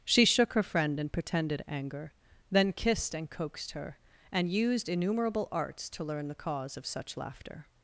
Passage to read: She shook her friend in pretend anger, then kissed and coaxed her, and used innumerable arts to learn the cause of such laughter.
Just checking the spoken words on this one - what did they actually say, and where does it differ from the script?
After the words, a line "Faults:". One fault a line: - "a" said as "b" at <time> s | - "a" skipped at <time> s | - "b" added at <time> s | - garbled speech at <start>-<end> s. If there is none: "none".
She shook her friend in pretended anger, then kissed and coaxed her, and used innumerable arts to learn the cause of such laughter.
Faults:
- "pretend" said as "pretended" at 1.1 s